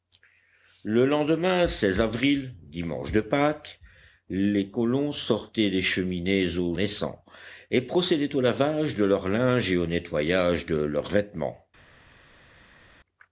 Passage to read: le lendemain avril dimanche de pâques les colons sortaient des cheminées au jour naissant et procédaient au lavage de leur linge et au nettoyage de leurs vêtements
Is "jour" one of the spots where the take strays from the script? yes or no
yes